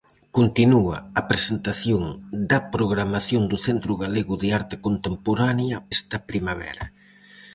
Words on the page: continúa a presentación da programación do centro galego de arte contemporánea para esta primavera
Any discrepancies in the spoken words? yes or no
yes